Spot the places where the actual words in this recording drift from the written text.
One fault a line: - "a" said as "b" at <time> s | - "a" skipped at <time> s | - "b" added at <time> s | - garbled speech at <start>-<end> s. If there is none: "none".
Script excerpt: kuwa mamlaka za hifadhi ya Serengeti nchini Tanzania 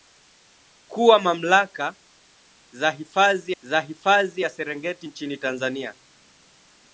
- "za hifadhi" added at 3.6 s